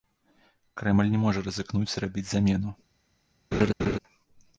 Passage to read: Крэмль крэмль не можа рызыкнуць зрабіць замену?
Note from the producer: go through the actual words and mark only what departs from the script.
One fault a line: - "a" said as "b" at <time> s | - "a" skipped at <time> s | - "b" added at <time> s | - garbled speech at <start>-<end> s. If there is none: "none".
- "крэмль" skipped at 1.1 s